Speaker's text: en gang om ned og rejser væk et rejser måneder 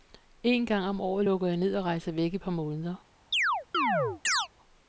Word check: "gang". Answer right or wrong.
right